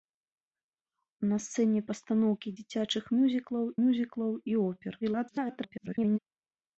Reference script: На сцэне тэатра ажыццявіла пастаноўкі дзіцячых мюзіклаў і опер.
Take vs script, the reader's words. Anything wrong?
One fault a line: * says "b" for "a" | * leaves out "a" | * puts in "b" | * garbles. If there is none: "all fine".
* leaves out "тэатра ажыццявіла"
* puts in "мюзіклаў"
* garbles